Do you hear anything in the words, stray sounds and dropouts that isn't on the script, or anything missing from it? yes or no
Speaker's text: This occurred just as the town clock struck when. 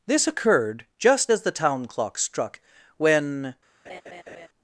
yes